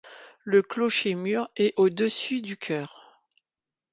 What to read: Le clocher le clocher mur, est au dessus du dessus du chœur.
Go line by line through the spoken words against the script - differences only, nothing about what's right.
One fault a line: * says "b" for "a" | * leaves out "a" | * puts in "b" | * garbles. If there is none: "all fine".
* leaves out "le clocher"
* leaves out "dessus du"